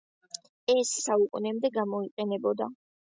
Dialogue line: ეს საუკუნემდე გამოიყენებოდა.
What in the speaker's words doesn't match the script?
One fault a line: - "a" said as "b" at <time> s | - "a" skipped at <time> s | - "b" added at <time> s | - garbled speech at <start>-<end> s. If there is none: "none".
none